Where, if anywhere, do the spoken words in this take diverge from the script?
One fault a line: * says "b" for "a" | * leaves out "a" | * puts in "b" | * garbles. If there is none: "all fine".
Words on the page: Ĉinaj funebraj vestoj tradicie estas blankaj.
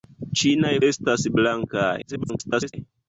* leaves out "funebraj vestoj tradicie"
* garbles